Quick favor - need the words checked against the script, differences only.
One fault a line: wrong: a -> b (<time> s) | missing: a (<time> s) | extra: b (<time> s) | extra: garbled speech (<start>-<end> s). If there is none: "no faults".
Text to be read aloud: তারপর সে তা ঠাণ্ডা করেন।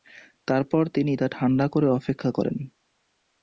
wrong: সে -> তিনি (0.9 s)
extra: করে অপেক্ষা (1.7 s)